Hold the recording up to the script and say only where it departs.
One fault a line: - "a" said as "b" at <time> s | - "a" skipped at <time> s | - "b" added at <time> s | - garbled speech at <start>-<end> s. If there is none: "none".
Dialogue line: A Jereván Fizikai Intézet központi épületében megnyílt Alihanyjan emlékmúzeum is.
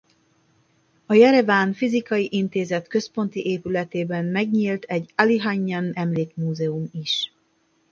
- "egy" added at 4.8 s